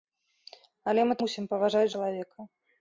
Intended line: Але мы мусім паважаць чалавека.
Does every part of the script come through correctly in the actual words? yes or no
yes